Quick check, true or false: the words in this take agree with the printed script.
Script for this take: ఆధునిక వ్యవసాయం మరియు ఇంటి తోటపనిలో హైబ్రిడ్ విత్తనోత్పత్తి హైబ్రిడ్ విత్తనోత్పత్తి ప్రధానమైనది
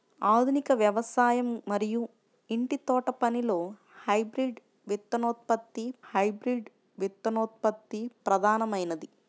true